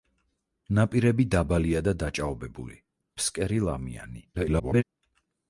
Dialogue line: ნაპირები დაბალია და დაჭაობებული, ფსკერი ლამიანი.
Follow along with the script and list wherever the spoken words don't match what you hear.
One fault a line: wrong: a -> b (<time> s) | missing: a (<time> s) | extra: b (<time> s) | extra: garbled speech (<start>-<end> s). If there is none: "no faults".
extra: garbled speech (4.3-4.8 s)